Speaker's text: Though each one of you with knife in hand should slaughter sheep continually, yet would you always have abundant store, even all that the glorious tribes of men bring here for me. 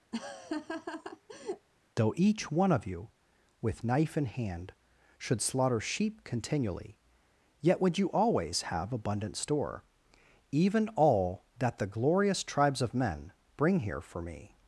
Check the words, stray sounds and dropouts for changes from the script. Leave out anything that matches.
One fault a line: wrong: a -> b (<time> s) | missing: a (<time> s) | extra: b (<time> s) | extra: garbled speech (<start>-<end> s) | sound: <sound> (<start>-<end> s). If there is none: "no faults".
sound: laugh (0.1-1.7 s)